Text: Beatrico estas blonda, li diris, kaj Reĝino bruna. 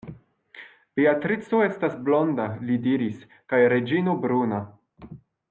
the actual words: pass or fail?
pass